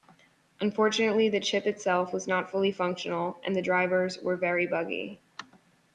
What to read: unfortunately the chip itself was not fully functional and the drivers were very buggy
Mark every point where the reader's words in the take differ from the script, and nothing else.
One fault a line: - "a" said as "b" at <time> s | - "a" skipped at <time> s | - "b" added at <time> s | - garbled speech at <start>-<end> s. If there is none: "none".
none